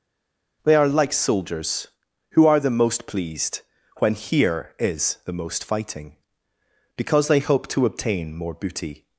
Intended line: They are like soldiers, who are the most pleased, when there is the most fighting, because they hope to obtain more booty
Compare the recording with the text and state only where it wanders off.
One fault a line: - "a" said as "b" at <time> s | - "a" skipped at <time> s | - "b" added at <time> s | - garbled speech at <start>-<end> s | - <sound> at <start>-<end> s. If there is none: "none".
- "there" said as "here" at 4.1 s